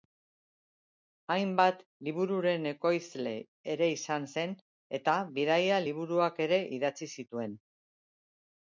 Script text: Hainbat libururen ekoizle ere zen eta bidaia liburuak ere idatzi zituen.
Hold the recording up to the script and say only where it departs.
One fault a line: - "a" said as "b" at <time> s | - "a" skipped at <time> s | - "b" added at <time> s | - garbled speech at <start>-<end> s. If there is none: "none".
- "izan" added at 4.0 s